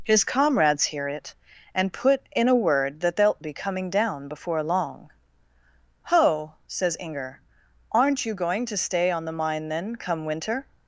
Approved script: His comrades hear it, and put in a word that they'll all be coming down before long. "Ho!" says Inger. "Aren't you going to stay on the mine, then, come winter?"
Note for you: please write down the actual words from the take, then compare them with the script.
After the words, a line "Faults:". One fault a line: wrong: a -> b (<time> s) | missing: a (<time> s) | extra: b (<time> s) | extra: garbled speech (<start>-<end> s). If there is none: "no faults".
His comrades hear it, and put in a word that they'll be coming down before long. "Ho!" says Inger. "Aren't you going to stay on the mine, then, come winter?"
Faults:
missing: all (3.4 s)